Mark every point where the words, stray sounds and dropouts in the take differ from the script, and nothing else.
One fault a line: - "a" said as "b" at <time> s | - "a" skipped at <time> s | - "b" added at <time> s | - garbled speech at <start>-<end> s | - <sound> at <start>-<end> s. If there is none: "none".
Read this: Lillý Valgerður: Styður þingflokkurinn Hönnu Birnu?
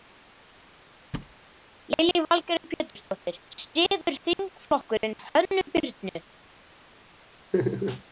- thud at 1.1-1.4 s
- "Pétursdóttir" added at 2.7 s
- laugh at 7.5-8.0 s